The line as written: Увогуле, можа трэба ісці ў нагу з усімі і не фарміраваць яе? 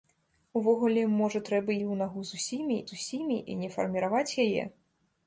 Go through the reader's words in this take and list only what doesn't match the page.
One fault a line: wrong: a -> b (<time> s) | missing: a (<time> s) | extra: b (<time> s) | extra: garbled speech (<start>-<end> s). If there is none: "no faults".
missing: ісці (1.8 s)
extra: з усімі (2.9 s)